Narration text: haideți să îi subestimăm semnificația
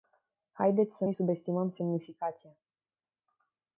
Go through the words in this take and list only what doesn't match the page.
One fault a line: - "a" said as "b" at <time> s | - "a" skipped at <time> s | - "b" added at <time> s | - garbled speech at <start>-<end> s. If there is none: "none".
none